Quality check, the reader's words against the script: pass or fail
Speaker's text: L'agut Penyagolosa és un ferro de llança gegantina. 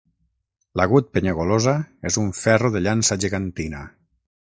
pass